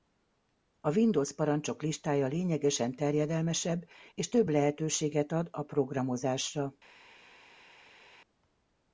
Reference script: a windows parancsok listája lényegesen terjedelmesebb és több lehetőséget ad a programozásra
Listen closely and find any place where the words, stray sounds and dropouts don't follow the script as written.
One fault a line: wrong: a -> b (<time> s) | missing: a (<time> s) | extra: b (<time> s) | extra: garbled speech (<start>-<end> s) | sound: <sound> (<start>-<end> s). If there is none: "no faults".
no faults